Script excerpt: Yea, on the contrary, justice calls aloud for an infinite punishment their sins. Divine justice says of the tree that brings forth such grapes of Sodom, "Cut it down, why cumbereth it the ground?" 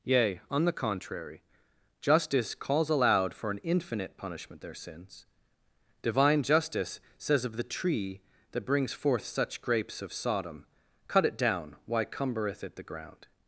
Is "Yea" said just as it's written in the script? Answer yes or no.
yes